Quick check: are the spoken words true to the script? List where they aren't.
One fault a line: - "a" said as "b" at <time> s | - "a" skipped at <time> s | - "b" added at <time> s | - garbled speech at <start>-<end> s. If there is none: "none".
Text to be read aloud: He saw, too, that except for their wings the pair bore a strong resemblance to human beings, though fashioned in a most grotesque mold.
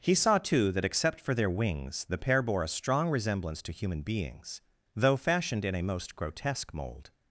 none